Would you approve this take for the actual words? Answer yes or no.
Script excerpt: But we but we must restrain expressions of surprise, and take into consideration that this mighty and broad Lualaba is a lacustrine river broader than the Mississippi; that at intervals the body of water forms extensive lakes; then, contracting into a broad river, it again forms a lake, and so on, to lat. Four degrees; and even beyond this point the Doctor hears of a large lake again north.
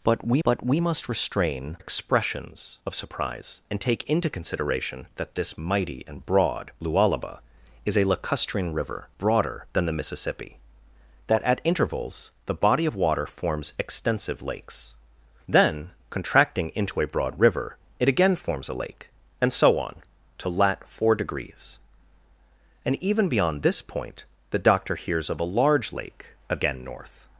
yes